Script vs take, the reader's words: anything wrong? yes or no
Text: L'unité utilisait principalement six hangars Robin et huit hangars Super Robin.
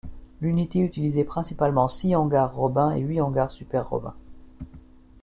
no